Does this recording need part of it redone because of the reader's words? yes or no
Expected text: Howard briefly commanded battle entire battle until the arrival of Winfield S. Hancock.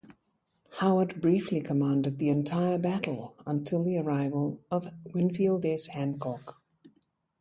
yes